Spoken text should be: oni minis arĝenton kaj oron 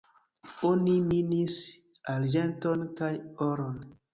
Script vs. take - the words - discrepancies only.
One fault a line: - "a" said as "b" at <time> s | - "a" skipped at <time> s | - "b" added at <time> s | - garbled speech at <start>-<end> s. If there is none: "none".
none